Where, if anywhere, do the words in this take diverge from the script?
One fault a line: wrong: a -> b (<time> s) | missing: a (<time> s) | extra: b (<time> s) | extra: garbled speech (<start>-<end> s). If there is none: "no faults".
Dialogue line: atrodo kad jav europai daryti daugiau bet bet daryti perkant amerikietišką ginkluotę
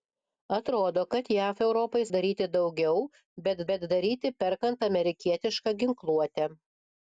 no faults